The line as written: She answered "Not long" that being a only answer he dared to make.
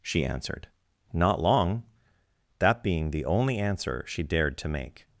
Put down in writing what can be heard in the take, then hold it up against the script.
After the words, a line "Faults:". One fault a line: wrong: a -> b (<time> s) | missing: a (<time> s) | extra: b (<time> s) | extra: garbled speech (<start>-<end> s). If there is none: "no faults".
She answered "Not long" that being the only answer she dared to make.
Faults:
wrong: a -> the (3.1 s)
wrong: he -> she (4.1 s)